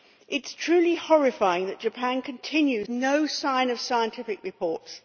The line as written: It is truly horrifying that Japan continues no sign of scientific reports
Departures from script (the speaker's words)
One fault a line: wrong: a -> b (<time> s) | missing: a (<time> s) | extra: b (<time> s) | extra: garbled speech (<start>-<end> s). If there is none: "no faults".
no faults